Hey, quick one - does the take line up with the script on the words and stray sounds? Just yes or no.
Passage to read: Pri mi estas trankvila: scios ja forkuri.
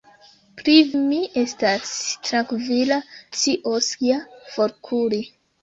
yes